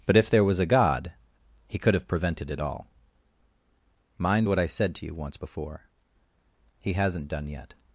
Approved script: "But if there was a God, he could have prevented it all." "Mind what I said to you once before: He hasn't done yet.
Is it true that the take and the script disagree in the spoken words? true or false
false